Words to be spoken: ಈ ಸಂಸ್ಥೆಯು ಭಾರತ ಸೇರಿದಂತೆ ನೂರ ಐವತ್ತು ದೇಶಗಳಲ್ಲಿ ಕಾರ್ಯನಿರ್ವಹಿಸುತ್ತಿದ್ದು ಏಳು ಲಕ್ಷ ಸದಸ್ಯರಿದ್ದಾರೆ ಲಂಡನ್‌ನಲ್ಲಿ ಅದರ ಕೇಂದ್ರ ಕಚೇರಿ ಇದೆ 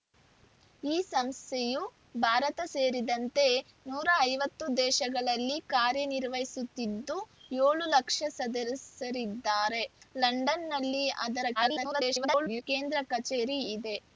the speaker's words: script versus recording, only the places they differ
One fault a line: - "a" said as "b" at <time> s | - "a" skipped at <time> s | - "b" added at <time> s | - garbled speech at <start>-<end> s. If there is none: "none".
- garbled speech at 11.6-12.6 s